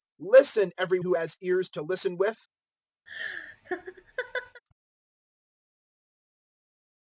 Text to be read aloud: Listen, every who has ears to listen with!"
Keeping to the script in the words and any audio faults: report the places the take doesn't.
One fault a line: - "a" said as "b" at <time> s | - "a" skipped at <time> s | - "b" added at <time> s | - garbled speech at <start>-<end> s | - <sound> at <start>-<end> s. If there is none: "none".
- laugh at 3.1-4.6 s